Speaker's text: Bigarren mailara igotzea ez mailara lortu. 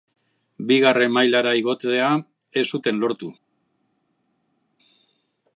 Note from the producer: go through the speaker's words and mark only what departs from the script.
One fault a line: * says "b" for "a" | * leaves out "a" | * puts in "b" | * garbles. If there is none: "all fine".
* says "zuten" for "mailara"